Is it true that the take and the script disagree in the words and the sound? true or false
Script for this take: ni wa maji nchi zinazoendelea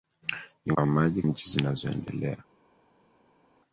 false